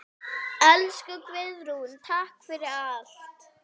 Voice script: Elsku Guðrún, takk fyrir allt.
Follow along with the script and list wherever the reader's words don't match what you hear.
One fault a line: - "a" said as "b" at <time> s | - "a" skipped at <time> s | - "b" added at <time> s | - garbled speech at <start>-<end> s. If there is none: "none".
none